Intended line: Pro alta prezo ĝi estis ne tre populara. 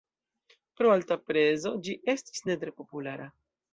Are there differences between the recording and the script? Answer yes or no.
no